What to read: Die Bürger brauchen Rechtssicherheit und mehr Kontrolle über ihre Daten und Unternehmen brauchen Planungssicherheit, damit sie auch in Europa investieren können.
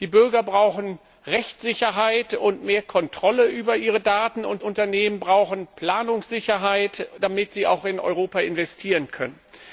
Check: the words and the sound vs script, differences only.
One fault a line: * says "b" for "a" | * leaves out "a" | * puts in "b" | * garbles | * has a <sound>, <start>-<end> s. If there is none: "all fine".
all fine